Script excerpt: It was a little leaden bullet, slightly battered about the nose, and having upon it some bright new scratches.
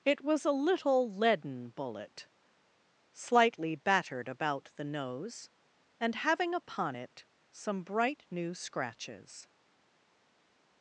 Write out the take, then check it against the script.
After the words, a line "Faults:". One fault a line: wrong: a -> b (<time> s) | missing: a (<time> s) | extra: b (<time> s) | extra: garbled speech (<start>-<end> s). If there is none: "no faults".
It was a little leaden bullet, slightly battered about the nose, and having upon it some bright new scratches.
Faults:
no faults